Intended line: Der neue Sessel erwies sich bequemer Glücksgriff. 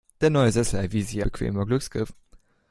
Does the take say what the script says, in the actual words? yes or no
yes